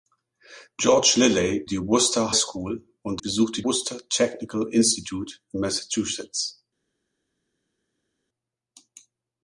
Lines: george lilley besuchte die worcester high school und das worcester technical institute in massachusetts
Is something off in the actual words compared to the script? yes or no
yes